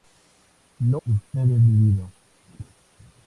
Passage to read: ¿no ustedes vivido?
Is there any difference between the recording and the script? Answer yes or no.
no